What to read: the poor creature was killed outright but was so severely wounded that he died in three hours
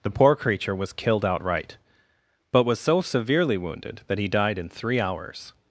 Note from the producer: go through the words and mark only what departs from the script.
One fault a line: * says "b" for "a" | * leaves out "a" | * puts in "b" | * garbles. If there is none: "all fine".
all fine